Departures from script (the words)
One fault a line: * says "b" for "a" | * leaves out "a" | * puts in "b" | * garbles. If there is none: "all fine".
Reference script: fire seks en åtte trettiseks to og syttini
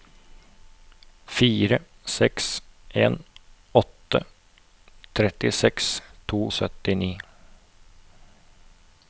all fine